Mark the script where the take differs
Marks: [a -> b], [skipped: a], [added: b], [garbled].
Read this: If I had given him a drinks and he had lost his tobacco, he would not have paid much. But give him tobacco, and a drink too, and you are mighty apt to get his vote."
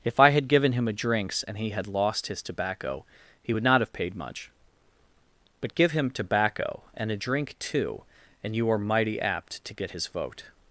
If I had given him a drinks and he had lost his tobacco, he would not have paid much. But give him tobacco, and a drink too, and you are mighty apt to get his vote."